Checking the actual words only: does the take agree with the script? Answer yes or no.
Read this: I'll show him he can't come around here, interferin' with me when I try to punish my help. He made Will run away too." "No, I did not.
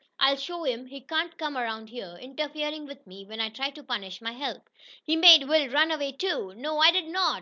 yes